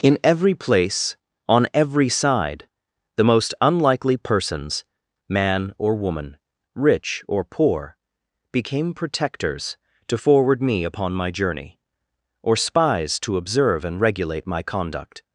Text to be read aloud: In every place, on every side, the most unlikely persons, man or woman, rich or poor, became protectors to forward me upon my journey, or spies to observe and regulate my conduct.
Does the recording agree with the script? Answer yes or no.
yes